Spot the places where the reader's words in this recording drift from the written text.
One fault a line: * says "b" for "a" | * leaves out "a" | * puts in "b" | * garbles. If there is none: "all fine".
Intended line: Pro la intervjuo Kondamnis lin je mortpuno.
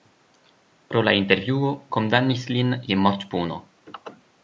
all fine